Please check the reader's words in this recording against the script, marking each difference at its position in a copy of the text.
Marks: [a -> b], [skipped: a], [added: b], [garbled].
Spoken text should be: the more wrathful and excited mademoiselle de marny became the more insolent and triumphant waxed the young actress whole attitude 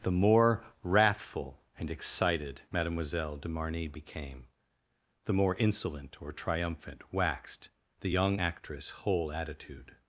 the more wrathful and excited mademoiselle de marny became the more insolent [and -> or] triumphant waxed the young actress whole attitude